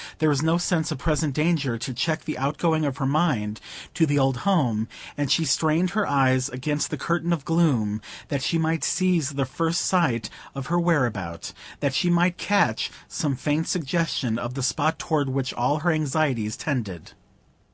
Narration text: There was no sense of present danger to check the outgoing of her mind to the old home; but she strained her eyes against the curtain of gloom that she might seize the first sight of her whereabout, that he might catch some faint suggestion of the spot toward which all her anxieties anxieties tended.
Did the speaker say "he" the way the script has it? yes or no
no